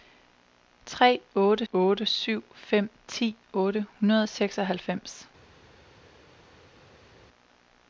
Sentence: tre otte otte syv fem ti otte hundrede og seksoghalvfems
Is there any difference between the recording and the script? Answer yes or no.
no